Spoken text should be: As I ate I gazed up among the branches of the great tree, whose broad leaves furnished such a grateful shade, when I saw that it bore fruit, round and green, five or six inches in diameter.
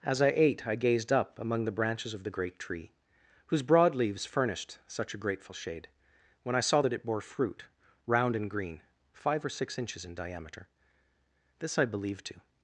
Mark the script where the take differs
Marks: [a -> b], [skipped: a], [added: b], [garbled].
As I ate I gazed up among the branches of the great tree, whose broad leaves furnished such a grateful shade, when I saw that it bore fruit, round and green, five or six inches in diameter. [added: This I believed to]